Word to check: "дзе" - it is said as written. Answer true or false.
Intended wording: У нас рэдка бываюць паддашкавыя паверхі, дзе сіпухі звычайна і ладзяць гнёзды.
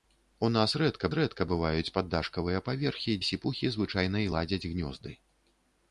false